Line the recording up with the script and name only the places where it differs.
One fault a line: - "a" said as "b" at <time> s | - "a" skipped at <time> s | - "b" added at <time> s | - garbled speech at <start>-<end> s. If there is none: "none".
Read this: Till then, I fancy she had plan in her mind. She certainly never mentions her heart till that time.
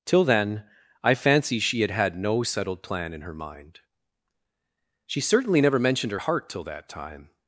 - "had no settled" added at 1.9 s
- "mentions" said as "mentioned" at 5.8 s